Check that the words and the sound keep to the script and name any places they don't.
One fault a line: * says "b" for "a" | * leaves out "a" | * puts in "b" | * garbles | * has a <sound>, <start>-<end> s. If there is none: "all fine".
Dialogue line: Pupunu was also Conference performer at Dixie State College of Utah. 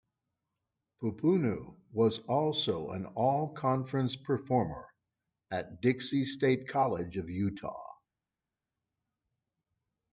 * puts in "an All"